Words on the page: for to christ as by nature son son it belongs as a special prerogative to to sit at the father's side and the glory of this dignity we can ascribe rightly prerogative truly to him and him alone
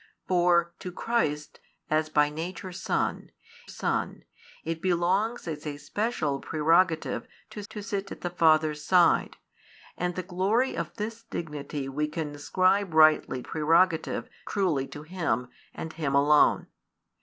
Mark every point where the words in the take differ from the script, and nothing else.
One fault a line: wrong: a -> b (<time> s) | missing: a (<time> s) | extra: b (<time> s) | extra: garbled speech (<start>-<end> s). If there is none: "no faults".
no faults